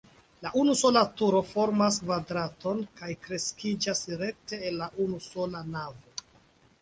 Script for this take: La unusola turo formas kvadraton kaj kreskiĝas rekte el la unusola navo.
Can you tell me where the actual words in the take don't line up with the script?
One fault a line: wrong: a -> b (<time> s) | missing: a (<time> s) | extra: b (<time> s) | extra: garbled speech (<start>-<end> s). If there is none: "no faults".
no faults